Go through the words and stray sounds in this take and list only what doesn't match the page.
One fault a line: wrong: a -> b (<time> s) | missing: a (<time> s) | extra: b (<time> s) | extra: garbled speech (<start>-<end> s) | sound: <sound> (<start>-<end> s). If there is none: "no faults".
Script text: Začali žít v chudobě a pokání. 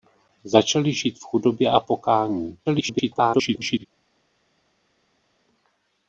extra: garbled speech (2.7-3.8 s)